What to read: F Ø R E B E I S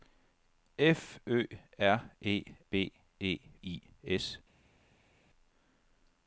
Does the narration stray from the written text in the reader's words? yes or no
no